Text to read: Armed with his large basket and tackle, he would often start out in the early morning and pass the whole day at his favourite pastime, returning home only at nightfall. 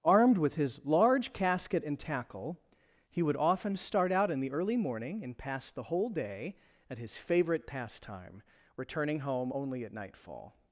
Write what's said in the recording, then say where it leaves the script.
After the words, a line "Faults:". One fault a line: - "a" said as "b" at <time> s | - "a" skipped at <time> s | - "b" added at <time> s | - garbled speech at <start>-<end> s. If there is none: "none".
Armed with his large casket and tackle, he would often start out in the early morning and pass the whole day at his favourite pastime, returning home only at nightfall.
Faults:
- "basket" said as "casket" at 1.3 s